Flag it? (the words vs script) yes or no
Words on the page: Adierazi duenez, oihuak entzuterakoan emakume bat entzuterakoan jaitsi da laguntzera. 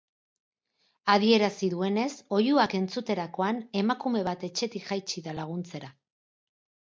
yes